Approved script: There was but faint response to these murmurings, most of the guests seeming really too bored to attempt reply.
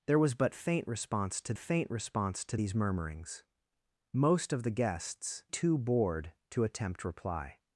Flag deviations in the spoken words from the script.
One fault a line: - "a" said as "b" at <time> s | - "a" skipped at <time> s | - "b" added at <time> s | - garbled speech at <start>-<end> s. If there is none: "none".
- "faint response to" added at 1.6 s
- "seeming really" skipped at 5.4 s